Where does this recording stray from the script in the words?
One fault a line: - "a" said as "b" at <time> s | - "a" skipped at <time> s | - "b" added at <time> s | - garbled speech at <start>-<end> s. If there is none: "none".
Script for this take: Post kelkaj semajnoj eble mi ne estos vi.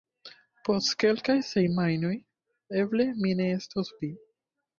none